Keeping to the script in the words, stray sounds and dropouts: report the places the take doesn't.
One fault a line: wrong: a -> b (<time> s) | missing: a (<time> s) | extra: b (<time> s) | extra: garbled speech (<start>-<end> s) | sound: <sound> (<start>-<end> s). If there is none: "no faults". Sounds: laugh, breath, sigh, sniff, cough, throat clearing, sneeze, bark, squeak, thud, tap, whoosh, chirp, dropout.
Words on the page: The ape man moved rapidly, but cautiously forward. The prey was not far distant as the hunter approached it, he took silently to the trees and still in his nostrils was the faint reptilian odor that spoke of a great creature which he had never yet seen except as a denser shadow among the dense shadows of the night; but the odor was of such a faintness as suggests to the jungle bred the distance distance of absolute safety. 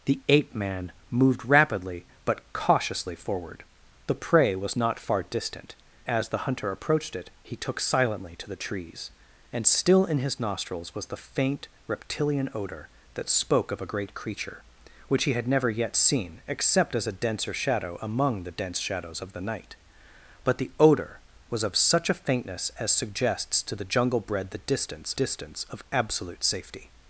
no faults